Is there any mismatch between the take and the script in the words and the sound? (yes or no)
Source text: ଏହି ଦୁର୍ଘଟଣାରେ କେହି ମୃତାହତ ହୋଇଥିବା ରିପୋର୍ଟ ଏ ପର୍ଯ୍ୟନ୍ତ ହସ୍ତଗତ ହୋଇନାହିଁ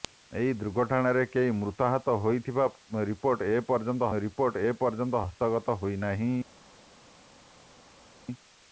yes